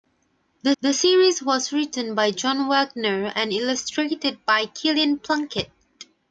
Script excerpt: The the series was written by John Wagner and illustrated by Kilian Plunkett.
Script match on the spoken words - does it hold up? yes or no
yes